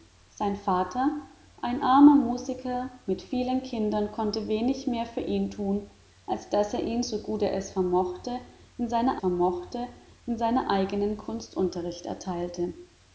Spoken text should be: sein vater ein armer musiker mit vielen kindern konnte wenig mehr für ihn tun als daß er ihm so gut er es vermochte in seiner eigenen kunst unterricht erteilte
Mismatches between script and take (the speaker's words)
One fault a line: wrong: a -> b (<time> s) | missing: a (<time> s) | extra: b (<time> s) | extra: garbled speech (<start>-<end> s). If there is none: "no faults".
extra: vermochte in seiner (9.2 s)